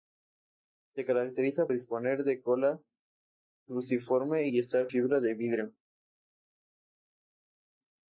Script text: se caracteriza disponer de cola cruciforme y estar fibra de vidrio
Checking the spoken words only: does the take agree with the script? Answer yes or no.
yes